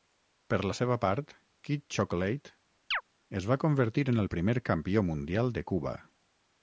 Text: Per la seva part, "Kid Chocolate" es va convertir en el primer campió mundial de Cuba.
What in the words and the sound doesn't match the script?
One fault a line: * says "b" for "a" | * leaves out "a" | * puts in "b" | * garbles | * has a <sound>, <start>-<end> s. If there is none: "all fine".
* has a chirp, 2.9-3.0 s